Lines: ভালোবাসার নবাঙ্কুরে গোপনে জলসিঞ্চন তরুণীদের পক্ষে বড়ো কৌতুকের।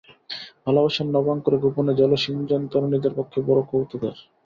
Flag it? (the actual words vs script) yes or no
no